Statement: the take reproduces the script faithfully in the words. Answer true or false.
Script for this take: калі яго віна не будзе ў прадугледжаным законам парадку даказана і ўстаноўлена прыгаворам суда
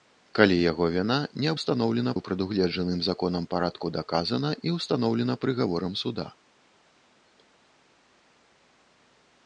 false